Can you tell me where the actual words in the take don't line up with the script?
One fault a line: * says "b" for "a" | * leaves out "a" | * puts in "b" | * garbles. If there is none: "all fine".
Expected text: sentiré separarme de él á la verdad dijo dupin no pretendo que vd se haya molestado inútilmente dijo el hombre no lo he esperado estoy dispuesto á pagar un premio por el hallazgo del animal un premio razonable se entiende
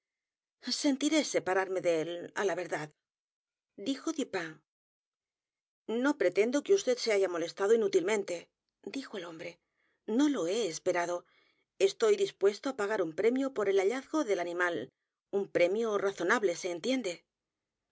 all fine